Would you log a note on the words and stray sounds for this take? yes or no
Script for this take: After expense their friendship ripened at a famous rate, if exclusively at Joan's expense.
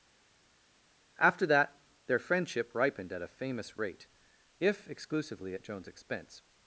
yes